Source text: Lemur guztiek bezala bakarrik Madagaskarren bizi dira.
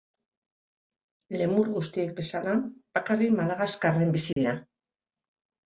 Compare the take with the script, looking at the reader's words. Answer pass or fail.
pass